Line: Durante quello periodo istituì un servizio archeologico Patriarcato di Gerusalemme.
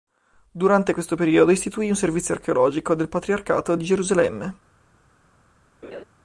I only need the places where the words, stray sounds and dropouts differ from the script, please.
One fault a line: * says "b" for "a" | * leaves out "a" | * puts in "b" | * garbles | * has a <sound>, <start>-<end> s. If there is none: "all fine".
* says "questo" for "quello"
* puts in "del"
* has a laugh, 5.8-6.0 s